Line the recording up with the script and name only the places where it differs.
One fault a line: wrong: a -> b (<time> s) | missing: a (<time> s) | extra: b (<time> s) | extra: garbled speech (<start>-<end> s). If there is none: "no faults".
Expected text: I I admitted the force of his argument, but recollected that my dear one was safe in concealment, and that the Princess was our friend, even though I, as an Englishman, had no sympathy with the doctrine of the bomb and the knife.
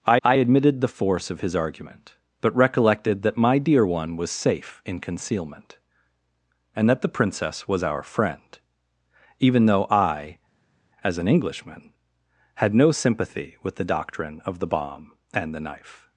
no faults